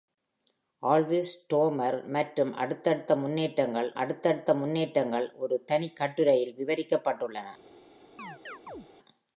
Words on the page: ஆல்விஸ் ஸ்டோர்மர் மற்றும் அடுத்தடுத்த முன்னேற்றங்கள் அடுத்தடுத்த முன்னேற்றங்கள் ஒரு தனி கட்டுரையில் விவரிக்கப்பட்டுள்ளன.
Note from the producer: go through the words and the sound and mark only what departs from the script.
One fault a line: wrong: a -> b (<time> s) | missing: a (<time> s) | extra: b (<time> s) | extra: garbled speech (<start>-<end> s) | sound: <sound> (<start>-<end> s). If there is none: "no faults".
sound: chirp (8.2-8.9 s)